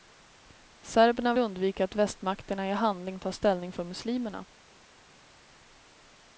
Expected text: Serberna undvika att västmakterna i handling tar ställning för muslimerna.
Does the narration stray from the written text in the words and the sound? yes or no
no